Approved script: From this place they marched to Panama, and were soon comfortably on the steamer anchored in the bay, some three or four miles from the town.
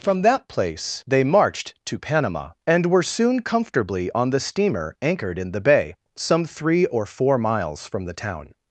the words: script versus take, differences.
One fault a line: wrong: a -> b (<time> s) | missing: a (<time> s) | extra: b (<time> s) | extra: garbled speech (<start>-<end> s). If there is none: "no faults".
wrong: this -> that (0.2 s)